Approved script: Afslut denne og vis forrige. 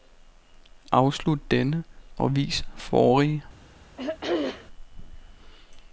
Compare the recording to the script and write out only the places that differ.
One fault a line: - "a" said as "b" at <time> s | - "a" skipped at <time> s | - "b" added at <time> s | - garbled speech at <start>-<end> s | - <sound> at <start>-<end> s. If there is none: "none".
- throat clearing at 4.0-4.7 s